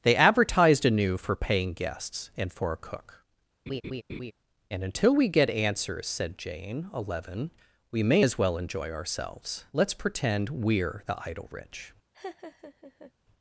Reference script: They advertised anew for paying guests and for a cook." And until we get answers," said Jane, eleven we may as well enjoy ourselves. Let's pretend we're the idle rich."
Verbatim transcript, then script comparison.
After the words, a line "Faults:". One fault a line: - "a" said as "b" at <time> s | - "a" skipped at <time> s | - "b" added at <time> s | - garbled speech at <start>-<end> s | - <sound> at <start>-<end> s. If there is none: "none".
They advertised anew for paying guests and for a cook." And until we get answers," said Jane, eleven we may as well enjoy ourselves. Let's pretend we're the idle rich."
Faults:
- laugh at 3.7-4.3 s
- laugh at 12.1-13.1 s